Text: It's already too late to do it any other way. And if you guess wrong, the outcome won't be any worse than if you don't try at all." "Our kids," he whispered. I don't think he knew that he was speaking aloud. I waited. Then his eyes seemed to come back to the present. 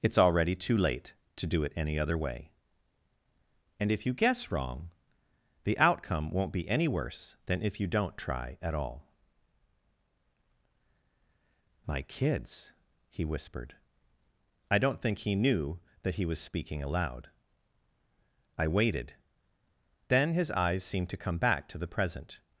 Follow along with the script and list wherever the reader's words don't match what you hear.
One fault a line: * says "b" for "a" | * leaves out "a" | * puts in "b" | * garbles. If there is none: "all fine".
* says "My" for "Our"